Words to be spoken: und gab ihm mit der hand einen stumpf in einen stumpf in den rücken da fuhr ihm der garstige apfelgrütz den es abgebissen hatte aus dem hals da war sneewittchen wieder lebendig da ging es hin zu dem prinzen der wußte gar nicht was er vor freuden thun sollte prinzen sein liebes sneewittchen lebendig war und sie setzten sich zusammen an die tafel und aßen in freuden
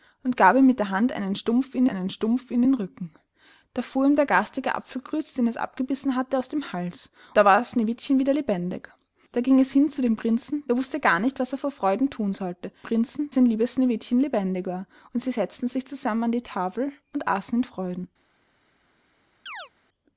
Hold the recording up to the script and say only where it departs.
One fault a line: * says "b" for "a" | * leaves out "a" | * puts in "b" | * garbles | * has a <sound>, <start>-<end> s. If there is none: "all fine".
* has a chirp, 19.5-19.7 s